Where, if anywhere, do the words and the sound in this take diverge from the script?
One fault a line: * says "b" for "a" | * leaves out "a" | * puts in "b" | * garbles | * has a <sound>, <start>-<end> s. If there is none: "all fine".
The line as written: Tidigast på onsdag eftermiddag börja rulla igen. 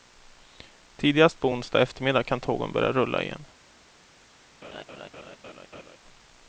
* puts in "kan tågen"
* has a laugh, 4.6-6.0 s